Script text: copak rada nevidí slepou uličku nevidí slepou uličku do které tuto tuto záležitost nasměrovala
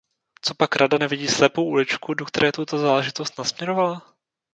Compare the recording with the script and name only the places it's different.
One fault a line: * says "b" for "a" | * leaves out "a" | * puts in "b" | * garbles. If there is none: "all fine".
* leaves out "nevidí slepou uličku"
* leaves out "tuto"